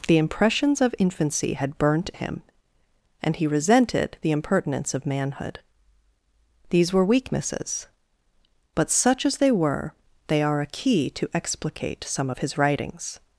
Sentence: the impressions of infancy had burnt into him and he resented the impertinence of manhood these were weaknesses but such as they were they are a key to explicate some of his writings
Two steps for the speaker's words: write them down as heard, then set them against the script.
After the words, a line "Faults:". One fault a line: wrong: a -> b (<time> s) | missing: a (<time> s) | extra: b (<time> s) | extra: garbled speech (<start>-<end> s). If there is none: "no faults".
the impressions of infancy had burnt him and he resented the impertinence of manhood these were weaknesses but such as they were they are a key to explicate some of his writings
Faults:
missing: into (2.1 s)